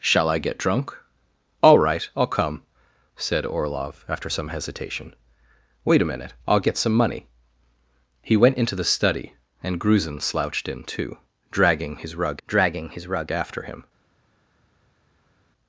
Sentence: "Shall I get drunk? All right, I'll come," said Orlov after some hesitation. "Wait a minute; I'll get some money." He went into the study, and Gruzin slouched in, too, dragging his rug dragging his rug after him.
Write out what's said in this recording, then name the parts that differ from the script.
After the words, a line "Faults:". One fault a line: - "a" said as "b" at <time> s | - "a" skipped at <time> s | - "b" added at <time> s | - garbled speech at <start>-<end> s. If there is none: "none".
"Shall I get drunk? All right, I'll come," said Orlov after some hesitation. "Wait a minute; I'll get some money." He went into the study, and Gruzin slouched in, too, dragging his rug dragging his rug after him.
Faults:
none